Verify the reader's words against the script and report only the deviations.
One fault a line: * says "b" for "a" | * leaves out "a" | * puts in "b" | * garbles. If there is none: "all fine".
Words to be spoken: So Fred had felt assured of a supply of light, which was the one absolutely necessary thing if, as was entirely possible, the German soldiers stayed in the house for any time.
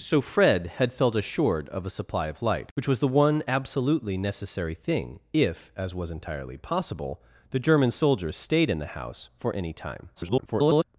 * garbles